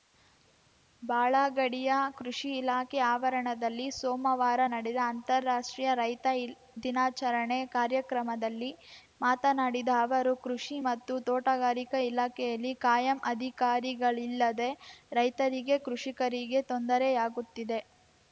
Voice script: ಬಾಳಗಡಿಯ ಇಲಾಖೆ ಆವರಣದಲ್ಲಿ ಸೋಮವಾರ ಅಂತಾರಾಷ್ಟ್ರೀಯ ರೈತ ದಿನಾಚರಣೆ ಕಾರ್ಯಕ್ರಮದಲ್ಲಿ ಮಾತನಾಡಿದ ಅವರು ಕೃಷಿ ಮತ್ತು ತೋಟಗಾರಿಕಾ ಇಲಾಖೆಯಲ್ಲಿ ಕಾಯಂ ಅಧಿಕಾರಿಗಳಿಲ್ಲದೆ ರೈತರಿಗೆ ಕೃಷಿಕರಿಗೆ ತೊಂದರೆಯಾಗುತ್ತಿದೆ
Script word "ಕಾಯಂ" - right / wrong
right